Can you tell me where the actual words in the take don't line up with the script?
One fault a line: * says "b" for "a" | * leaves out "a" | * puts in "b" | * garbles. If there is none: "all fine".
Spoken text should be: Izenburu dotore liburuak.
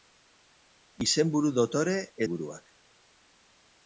all fine